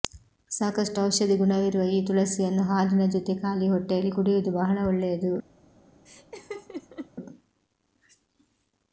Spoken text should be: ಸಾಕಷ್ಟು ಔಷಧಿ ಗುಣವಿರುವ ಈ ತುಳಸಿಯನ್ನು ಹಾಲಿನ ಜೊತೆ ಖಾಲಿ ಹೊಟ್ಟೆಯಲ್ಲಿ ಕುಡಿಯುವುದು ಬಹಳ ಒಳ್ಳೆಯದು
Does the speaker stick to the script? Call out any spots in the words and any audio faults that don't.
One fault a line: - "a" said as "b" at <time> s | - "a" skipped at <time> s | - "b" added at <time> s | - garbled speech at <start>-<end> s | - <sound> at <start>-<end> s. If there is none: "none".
- laugh at 6.1-7.1 s